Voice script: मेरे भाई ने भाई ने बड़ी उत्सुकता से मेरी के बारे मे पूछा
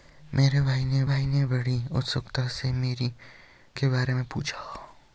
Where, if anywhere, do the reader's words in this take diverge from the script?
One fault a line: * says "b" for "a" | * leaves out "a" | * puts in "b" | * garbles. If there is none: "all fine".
all fine